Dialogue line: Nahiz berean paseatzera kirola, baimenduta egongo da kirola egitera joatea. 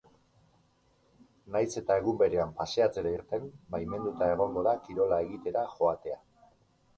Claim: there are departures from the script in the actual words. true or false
true